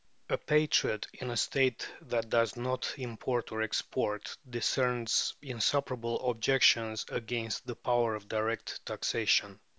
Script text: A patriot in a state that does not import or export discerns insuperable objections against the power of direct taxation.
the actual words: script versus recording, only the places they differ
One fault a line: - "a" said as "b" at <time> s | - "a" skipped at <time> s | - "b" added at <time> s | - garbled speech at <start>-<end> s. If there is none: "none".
none